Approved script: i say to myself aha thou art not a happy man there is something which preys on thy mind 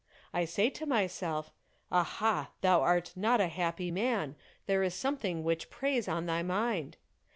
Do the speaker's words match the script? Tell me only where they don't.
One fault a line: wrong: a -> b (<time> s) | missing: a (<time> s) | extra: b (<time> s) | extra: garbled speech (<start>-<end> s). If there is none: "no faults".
no faults